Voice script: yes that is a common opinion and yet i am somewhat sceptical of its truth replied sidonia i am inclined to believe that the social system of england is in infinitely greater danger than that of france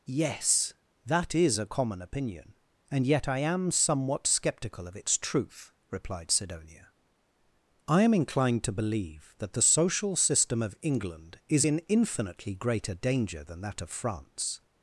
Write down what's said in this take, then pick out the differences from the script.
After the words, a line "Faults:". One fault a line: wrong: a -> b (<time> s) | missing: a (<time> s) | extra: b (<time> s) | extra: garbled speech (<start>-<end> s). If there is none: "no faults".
yes that is a common opinion and yet i am somewhat sceptical of its truth replied sidonia i am inclined to believe that the social system of england is in infinitely greater danger than that of france
Faults:
no faults